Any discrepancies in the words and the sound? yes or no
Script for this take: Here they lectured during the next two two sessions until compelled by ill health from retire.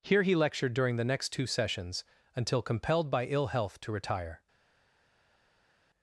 yes